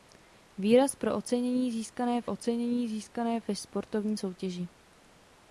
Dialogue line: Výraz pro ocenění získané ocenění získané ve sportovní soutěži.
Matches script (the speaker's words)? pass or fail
pass